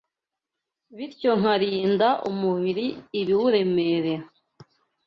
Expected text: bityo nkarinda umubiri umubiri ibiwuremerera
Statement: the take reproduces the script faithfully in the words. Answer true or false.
false